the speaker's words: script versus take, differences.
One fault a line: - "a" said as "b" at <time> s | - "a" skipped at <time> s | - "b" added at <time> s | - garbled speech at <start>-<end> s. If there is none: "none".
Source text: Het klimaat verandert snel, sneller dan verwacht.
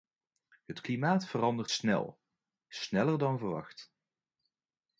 none